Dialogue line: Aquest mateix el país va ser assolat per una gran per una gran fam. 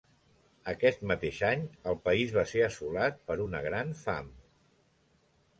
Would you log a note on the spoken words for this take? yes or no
yes